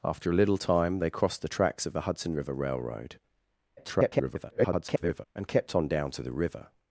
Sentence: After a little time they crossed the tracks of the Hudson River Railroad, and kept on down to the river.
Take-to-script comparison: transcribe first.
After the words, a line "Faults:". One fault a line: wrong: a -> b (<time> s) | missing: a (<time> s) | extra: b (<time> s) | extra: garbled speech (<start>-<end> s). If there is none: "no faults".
After a little time they crossed the tracks of the Hudson River Railroad, [garbled] and kept on down to the river.
Faults:
extra: garbled speech (3.8-5.3 s)